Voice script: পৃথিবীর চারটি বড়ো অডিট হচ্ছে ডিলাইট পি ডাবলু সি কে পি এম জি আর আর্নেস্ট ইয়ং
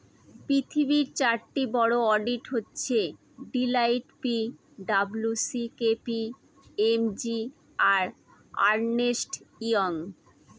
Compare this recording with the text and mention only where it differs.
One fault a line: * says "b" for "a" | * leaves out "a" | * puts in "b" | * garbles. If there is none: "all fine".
all fine